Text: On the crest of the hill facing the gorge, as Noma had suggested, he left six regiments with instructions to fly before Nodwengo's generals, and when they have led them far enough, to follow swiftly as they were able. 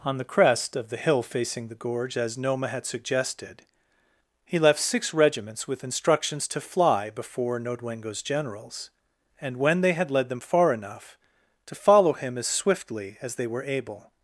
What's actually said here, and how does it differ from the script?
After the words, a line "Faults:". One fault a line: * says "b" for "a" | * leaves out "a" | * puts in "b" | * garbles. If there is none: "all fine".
On the crest of the hill facing the gorge, as Noma had suggested, he left six regiments with instructions to fly before Nodwengo's generals, and when they had led them far enough, to follow him as swiftly as they were able.
Faults:
* says "had" for "have"
* puts in "him as"